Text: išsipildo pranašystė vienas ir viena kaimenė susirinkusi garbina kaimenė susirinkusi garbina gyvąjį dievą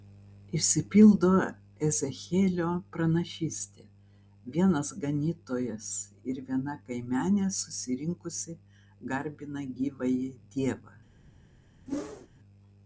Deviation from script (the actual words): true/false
true